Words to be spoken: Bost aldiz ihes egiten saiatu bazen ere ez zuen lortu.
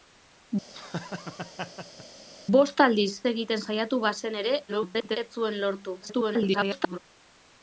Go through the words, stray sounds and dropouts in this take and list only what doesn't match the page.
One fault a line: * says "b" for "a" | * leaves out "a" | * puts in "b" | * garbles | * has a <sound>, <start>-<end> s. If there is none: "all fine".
* has a laugh, 0.7-2.1 s
* leaves out "ihes"
* garbles
* garbles